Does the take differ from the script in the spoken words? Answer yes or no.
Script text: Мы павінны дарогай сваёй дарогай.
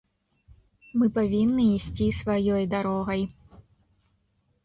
yes